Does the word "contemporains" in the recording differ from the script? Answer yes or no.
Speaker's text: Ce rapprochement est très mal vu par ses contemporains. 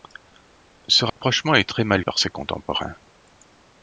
no